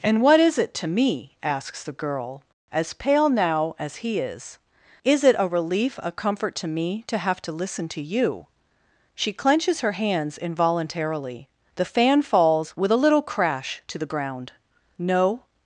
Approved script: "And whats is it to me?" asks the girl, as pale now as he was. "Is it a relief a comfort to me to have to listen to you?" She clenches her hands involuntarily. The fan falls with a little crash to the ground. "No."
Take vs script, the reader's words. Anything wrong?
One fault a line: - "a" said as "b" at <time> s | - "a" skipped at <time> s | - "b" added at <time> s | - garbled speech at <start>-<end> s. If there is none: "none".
- "whats" said as "what" at 0.2 s
- "was" said as "is" at 4.2 s